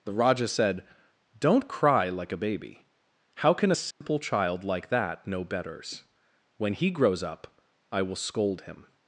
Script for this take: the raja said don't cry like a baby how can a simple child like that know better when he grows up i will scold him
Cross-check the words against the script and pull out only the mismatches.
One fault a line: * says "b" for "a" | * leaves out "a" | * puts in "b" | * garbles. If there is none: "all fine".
* says "betters" for "better"